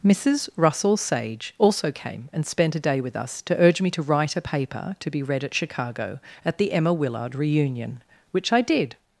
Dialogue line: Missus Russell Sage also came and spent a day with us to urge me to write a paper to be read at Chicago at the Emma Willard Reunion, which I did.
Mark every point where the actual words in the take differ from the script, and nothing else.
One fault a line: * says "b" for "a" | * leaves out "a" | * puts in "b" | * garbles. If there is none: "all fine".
all fine